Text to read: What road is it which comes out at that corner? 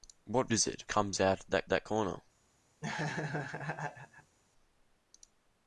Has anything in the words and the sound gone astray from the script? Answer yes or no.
yes